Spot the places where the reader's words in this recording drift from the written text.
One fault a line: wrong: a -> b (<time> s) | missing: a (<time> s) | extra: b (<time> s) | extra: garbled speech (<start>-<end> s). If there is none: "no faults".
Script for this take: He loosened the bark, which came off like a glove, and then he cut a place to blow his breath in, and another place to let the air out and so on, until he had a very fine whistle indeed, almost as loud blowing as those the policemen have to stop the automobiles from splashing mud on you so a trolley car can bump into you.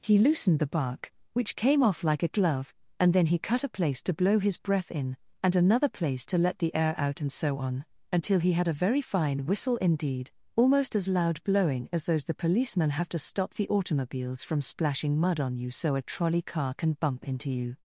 no faults